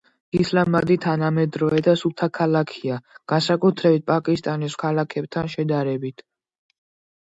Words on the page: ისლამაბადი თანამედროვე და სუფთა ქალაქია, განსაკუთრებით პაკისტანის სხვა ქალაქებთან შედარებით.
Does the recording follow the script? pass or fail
fail